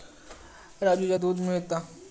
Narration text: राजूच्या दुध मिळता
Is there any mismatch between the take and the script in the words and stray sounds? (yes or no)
no